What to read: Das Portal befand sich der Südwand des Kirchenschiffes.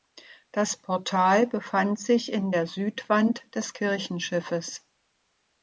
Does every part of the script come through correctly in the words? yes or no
no